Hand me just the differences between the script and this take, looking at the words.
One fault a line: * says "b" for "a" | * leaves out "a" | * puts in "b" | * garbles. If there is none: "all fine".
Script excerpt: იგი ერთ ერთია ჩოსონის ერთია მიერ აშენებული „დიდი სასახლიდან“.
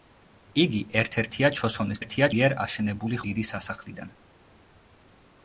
all fine